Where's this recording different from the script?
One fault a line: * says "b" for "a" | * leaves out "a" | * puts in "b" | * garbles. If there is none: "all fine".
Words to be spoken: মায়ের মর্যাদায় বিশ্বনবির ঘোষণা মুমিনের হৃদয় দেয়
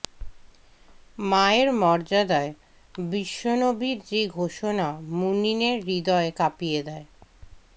* puts in "যে"
* puts in "কাঁপিয়ে"